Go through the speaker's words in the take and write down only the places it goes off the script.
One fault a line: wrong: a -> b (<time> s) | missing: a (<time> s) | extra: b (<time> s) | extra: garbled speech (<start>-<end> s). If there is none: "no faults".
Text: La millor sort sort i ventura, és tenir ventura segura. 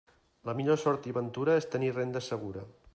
missing: sort (1.1 s)
wrong: ventura -> renda (2.0 s)